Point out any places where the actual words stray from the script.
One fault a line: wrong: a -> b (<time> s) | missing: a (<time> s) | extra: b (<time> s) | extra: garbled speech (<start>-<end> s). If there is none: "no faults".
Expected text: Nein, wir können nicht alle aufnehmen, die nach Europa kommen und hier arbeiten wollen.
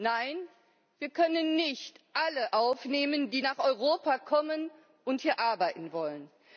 no faults